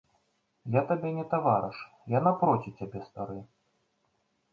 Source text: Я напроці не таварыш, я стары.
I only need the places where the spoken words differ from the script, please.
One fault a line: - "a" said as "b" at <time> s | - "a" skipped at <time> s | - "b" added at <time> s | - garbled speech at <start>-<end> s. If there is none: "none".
- "напроці" said as "табе" at 0.9 s
- "напроці цябе" added at 2.3 s